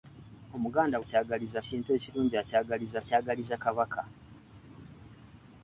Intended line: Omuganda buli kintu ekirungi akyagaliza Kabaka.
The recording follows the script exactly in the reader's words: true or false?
false